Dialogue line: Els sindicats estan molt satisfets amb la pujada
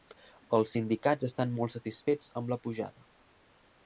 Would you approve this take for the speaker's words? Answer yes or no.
yes